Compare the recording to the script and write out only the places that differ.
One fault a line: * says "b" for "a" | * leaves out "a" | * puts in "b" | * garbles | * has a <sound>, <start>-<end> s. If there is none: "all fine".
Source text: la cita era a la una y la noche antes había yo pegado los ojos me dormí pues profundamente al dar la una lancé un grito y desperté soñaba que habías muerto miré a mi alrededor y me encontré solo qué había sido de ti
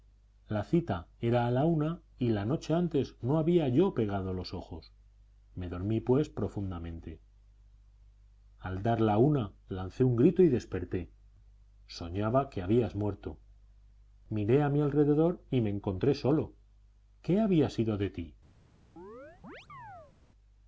* puts in "no"
* has a chirp, 19.0-20.1 s